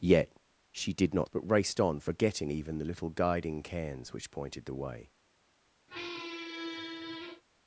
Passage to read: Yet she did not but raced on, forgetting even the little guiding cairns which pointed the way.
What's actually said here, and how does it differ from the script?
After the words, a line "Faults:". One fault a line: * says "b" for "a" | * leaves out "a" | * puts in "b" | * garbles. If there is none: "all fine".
Yet she did not but raced on, forgetting even the little guiding cairns which pointed the way.
Faults:
all fine